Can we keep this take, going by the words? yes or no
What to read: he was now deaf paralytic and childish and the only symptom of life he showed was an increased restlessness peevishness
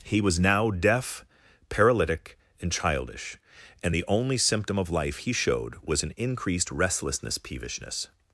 yes